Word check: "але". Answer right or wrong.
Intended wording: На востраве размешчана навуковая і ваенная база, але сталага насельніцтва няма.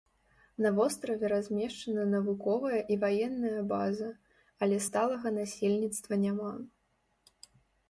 right